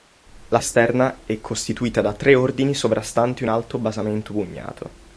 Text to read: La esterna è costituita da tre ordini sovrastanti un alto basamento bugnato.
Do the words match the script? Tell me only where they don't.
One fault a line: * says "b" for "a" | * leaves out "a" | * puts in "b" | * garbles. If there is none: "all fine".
all fine